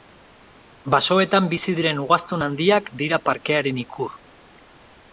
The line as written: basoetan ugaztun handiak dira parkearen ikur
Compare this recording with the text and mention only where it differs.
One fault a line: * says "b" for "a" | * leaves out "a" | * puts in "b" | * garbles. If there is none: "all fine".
* puts in "bizi diren"